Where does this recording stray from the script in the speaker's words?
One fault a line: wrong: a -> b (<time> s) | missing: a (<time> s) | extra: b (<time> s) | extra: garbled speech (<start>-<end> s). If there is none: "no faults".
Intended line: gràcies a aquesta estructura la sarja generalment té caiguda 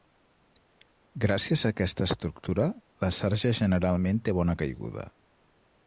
extra: bona (4.4 s)